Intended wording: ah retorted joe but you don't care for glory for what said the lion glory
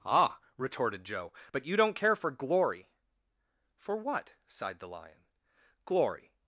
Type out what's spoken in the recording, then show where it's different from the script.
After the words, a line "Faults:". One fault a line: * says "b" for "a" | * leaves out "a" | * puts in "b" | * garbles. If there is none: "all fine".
ah retorted joe but you don't care for glory for what sighed the lion glory
Faults:
* says "sighed" for "said"